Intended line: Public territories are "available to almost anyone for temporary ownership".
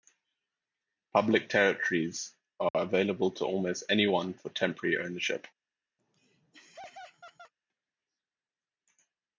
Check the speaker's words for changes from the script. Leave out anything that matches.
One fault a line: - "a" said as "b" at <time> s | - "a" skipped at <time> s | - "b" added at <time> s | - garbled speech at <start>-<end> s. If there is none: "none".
none